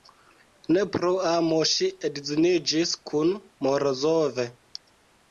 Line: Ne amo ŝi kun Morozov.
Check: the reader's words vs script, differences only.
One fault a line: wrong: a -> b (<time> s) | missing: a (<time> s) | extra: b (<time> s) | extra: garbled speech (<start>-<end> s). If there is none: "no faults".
extra: pro (0.9 s)
extra: edziniĝis (2.1 s)